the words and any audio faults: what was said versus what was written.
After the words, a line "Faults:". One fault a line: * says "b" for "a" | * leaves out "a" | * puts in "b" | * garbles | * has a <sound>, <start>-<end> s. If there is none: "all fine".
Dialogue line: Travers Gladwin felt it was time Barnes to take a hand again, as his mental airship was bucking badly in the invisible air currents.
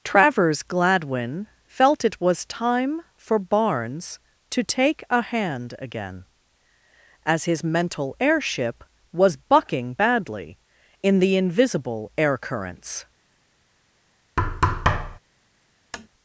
Travers Gladwin felt it was time for Barnes to take a hand again, as his mental airship was bucking badly in the invisible air currents.
Faults:
* puts in "for"
* has a thud, 14.4-15.2 s
* has a tap, 15.9-16.1 s